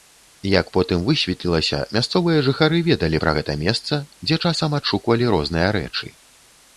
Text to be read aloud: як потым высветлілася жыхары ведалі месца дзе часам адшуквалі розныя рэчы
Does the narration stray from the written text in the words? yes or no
yes